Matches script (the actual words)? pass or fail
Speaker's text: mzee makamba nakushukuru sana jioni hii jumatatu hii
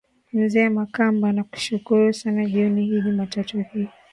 pass